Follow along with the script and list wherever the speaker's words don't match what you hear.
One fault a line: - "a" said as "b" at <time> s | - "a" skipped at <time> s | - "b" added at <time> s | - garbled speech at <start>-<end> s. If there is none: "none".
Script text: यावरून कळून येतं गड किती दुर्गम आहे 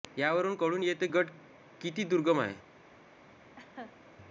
none